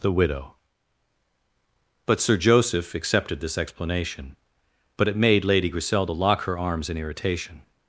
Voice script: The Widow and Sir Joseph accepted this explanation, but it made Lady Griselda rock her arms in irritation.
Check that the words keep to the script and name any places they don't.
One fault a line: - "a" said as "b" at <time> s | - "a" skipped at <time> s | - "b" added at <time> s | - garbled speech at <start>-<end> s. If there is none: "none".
- "and" said as "but" at 2.0 s
- "rock" said as "lock" at 6.1 s